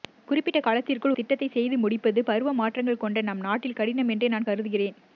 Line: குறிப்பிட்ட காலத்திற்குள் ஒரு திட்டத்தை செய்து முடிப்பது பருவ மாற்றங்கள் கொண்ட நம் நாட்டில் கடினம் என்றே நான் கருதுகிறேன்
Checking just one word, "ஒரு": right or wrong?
wrong